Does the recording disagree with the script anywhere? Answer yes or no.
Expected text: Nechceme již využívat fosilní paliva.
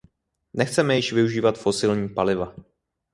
no